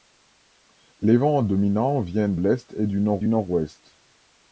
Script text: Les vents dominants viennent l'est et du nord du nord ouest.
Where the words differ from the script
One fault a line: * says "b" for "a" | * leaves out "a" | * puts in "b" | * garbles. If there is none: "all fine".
all fine